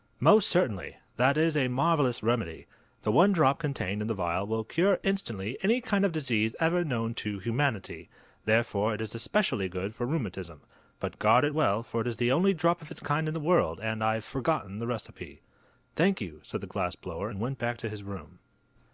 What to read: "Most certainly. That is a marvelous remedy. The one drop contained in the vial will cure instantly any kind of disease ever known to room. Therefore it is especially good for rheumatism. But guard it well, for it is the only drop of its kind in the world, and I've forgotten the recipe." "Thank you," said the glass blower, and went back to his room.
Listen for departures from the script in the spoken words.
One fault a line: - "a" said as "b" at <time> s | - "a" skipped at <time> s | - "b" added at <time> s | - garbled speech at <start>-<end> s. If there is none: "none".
- "room" said as "humanity" at 7.4 s